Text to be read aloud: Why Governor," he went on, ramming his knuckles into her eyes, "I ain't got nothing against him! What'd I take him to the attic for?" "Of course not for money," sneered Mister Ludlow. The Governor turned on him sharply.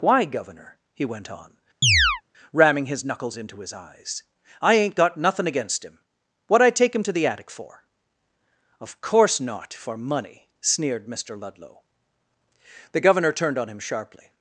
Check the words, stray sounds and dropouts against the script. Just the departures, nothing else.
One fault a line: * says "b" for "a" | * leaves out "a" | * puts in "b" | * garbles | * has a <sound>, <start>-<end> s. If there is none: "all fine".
* has a chirp, 1.8-2.2 s
* says "his" for "her"